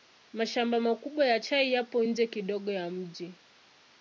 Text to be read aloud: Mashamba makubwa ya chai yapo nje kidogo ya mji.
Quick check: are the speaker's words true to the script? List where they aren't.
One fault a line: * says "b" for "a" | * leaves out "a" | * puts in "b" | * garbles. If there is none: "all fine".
all fine